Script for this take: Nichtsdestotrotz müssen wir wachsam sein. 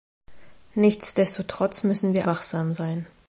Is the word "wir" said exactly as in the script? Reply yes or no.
yes